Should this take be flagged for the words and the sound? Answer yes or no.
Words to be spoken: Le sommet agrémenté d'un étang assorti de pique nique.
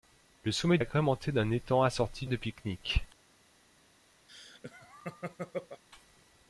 yes